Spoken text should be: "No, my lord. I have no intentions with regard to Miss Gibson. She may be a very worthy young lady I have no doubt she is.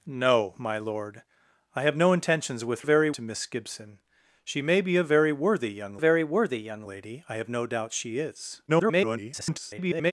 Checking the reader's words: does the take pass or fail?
fail